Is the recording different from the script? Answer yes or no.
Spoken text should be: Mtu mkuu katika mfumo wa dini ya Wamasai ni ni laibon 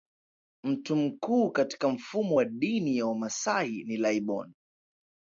yes